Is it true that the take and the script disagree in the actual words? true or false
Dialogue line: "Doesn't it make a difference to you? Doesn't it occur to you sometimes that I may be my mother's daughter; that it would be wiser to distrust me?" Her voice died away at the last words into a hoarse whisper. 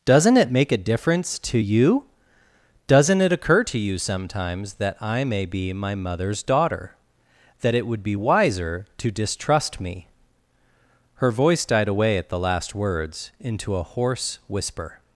false